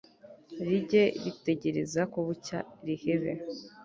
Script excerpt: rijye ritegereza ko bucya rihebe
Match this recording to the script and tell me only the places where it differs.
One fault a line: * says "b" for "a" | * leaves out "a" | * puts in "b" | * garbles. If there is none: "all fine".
all fine